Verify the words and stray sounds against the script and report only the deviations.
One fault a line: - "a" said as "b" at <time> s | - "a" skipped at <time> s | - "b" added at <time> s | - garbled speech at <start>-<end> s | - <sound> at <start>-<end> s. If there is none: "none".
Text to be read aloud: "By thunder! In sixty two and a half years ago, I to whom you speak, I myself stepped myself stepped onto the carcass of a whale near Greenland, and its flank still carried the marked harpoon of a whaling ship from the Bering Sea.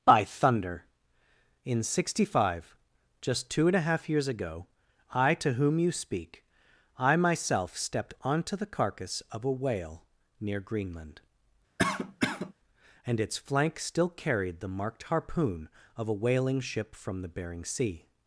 - "five just" added at 2.3 s
- "myself stepped" skipped at 8.2 s
- cough at 11.8-12.5 s